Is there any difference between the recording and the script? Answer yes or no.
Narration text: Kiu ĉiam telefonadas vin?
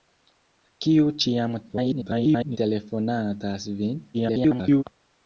yes